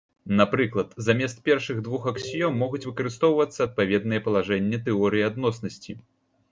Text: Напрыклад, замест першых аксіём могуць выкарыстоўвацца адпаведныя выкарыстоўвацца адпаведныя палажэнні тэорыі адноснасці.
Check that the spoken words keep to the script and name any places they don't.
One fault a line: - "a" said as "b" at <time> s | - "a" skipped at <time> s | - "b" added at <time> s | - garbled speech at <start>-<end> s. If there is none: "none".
- "двух" added at 1.9 s
- "выкарыстоўвацца адпаведныя" skipped at 4.2 s